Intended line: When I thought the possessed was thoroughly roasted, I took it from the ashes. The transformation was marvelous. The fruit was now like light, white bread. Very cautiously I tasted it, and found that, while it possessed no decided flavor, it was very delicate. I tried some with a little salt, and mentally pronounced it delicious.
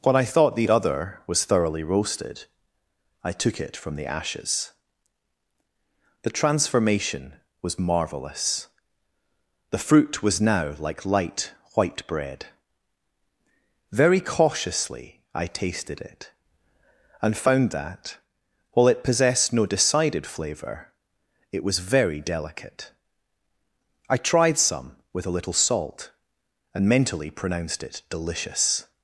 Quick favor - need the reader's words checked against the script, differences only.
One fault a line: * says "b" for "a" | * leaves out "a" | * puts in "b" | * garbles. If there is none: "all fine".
* says "other" for "possessed"